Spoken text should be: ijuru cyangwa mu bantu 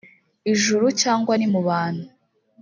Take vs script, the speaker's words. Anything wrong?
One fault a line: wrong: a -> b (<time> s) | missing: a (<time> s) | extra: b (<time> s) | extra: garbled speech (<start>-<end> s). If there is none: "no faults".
extra: ni (1.4 s)